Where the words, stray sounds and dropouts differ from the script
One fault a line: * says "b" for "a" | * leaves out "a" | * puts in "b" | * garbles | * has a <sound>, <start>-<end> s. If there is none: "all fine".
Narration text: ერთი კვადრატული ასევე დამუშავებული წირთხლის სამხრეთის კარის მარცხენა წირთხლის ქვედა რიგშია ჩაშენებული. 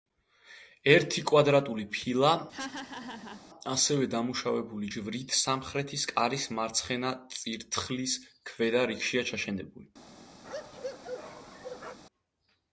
* puts in "ფილა"
* has a laugh, 2.5-3.4 s
* says "ჯვრით" for "წირთხლის"
* has a bark, 10.4-12.0 s